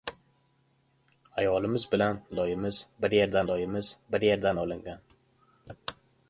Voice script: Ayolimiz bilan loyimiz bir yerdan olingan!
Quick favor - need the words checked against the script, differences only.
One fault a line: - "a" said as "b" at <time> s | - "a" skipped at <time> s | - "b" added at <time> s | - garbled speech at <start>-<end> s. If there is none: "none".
- "loyimiz bir yerdan" added at 3.5 s